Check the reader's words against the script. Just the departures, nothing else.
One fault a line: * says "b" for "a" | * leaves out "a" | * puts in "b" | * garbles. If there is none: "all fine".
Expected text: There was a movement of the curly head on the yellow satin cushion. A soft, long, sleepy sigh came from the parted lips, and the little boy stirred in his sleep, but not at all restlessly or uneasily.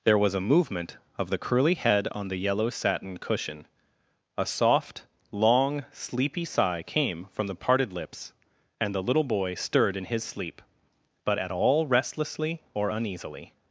* leaves out "not"